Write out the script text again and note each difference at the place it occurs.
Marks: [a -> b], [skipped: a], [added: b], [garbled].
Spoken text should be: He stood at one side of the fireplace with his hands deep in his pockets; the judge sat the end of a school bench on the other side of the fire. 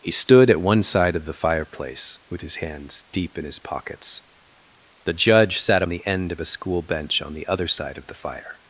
He stood at one side of the fireplace with his hands deep in his pockets; the judge sat the end of a school bench on the other side of the fire.